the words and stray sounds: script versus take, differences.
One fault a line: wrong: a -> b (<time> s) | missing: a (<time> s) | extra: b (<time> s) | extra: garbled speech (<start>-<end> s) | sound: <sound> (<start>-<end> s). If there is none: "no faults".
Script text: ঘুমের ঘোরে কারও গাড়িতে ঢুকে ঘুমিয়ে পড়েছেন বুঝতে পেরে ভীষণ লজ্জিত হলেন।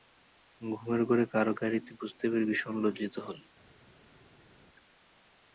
missing: ঢুকে ঘুমিয়ে পড়েছেন (1.9 s)